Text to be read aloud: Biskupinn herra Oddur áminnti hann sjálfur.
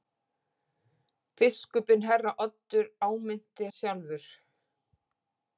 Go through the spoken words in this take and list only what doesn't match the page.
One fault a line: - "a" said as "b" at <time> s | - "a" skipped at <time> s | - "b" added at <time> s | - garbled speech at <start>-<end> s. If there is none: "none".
- "hann" skipped at 3.7 s